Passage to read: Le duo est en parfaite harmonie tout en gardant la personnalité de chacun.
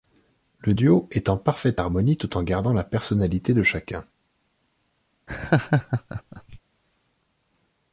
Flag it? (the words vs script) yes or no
no